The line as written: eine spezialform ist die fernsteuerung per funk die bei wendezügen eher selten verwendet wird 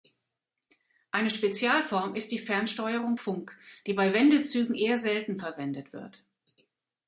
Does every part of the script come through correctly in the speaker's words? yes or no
no